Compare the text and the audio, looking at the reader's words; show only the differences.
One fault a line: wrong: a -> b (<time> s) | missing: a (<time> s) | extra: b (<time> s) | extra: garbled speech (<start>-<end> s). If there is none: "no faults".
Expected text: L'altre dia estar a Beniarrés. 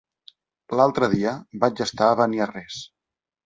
extra: vaig (1.7 s)